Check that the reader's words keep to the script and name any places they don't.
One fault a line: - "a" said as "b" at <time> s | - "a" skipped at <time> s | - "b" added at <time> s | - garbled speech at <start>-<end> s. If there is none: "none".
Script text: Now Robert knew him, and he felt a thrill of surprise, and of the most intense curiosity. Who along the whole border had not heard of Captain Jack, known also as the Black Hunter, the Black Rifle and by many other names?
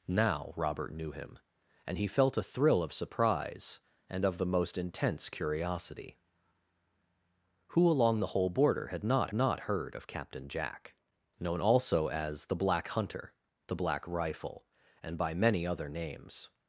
- "not" added at 9.3 s